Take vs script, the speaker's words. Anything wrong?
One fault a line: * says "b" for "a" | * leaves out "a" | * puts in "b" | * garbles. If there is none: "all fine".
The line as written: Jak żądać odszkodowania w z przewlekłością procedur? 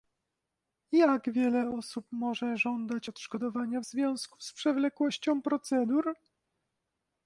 * puts in "wiele osób może"
* puts in "związku"